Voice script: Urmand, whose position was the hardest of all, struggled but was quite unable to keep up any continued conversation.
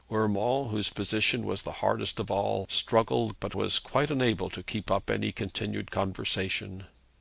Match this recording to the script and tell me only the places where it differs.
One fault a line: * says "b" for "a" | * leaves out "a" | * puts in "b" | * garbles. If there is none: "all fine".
all fine